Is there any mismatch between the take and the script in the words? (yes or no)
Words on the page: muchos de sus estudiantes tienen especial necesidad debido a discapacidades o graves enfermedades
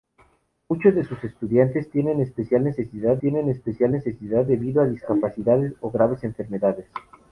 yes